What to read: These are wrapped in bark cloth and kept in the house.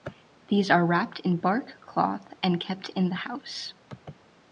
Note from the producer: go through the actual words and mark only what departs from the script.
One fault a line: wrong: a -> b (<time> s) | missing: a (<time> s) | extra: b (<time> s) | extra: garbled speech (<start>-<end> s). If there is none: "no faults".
no faults